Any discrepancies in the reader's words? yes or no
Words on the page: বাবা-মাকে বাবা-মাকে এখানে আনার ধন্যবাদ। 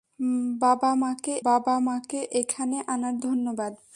no